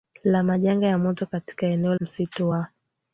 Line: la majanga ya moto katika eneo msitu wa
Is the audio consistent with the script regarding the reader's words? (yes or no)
yes